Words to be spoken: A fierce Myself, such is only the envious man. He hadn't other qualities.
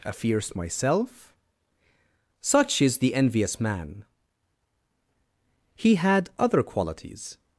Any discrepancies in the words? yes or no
yes